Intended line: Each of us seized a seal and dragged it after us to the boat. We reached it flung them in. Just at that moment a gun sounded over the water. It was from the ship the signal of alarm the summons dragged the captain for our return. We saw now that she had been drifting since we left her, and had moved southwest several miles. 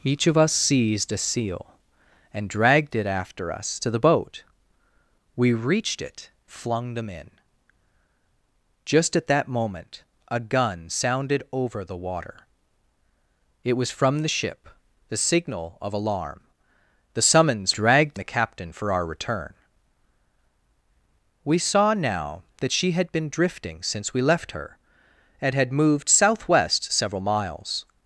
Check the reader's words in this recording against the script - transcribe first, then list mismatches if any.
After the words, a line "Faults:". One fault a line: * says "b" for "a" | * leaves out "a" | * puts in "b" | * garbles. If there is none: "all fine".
Each of us seized a seal and dragged it after us to the boat. We reached it flung them in. Just at that moment a gun sounded over the water. It was from the ship the signal of alarm the summons dragged the captain for our return. We saw now that she had been drifting since we left her, and had moved southwest several miles.
Faults:
all fine